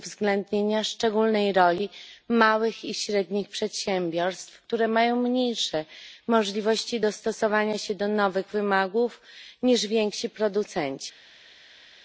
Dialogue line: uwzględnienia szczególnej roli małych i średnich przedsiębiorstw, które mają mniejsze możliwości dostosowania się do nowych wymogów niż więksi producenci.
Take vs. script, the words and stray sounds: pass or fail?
pass